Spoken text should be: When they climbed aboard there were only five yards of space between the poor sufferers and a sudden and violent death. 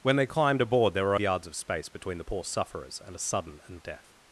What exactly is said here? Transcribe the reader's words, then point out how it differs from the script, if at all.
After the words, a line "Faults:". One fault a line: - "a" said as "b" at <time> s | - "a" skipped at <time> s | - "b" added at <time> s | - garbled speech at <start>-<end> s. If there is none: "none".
When they climbed aboard there were yards of space between the poor sufferers and a sudden and death.
Faults:
- "only five" skipped at 1.1 s
- "violent" skipped at 3.8 s